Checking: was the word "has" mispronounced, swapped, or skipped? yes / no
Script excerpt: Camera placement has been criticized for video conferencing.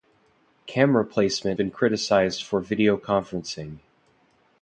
yes